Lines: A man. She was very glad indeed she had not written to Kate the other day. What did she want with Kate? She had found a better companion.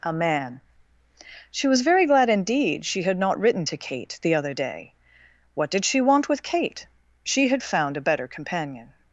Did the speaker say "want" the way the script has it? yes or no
yes